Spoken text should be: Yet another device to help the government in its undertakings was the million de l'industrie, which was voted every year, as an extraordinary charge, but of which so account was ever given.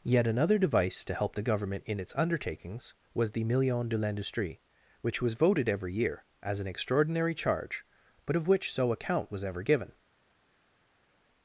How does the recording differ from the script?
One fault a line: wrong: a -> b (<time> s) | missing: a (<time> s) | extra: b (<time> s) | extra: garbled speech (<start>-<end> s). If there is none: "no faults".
no faults